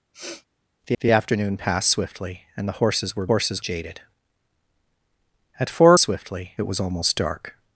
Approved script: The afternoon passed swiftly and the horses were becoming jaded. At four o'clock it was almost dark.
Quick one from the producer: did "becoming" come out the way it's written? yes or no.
no